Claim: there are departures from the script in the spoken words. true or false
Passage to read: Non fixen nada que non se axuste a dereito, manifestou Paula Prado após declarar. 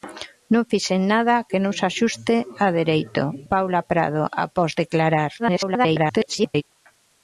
true